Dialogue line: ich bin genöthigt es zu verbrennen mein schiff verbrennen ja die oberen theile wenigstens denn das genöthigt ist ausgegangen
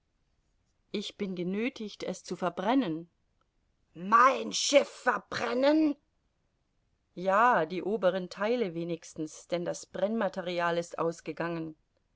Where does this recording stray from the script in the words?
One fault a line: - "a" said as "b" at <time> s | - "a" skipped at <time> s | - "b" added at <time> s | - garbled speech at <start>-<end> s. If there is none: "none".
- "genöthigt" said as "brennmaterial" at 9.8 s